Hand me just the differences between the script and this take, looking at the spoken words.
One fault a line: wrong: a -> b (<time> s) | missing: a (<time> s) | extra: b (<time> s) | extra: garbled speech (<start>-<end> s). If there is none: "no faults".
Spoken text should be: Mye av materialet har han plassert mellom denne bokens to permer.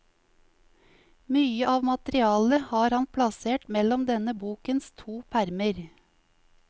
no faults